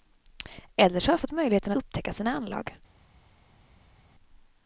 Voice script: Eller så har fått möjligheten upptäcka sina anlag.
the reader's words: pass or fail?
pass